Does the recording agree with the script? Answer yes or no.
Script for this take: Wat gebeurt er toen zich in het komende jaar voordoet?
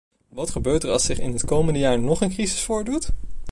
no